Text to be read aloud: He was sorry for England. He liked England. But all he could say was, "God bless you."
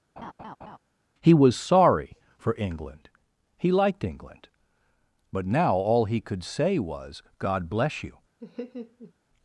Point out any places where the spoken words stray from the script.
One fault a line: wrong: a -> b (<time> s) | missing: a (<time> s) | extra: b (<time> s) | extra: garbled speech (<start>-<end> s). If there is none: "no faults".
extra: now (5.4 s)